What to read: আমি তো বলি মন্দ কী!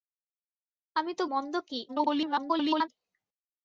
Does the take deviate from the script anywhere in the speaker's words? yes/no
yes